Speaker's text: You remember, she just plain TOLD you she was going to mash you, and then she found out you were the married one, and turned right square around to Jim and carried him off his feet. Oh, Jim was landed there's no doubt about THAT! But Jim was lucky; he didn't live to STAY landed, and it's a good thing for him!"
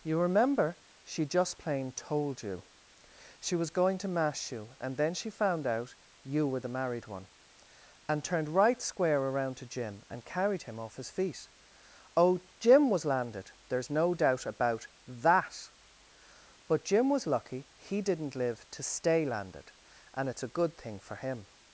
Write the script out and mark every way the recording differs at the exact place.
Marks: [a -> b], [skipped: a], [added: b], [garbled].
You remember, she just plain TOLD you she was going to mash you, and then she found out you were the married one, and turned right square around to Jim and carried him off his feet. Oh, Jim was landed there's no doubt about THAT! But Jim was lucky; he didn't live to STAY landed, and it's a good thing for him!"